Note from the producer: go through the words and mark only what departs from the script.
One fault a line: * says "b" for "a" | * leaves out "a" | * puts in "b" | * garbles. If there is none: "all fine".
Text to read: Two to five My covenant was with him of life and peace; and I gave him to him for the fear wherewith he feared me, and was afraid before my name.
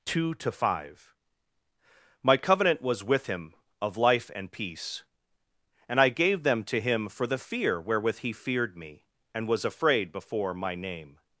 * says "them" for "him"